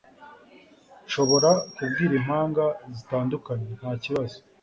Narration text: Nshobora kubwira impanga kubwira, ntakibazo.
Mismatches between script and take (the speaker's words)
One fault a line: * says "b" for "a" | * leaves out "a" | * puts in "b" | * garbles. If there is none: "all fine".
* says "zitandukanye" for "kubwira"